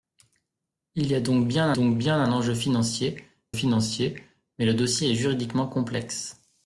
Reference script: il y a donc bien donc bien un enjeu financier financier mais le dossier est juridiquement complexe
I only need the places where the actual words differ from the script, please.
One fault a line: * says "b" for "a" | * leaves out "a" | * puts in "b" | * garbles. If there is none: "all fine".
all fine